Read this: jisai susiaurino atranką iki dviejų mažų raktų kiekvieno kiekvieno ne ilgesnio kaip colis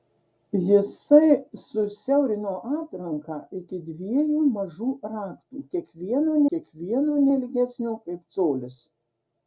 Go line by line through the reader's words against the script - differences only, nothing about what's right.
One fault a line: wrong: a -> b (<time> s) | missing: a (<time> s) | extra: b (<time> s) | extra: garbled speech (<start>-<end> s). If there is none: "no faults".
no faults